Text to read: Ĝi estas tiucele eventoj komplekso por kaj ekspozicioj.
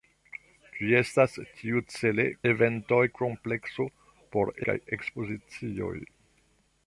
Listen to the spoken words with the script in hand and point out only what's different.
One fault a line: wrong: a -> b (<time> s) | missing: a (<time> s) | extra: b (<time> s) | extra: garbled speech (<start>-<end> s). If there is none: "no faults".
no faults